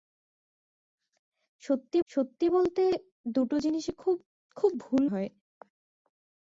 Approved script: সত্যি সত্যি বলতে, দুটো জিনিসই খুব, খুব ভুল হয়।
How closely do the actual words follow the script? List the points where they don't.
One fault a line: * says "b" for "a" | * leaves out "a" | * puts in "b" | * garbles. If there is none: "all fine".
all fine